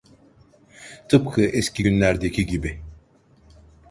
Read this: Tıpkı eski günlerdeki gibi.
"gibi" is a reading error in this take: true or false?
false